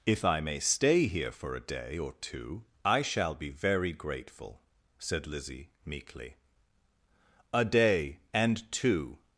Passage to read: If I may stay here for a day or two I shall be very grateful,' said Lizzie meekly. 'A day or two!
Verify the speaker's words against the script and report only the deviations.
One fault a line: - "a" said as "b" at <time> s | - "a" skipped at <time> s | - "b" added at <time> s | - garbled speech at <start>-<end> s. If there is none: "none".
- "or" said as "and" at 8.3 s